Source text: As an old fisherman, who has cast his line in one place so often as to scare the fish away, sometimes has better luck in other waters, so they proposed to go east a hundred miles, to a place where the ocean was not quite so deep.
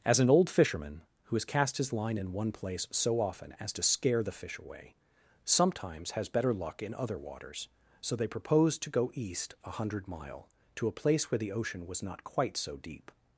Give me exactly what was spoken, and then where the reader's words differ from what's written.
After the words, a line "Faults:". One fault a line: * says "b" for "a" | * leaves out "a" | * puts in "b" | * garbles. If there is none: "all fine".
As an old fisherman, who has cast his line in one place so often as to scare the fish away, sometimes has better luck in other waters, so they proposed to go east a hundred mile, to a place where the ocean was not quite so deep.
Faults:
* says "mile" for "miles"